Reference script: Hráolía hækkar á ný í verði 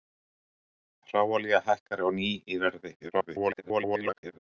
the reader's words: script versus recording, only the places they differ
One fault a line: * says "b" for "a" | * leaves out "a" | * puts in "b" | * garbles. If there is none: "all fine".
* garbles